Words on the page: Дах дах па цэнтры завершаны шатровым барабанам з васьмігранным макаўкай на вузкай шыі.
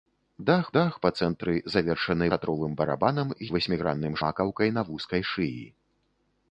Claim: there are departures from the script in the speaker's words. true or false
false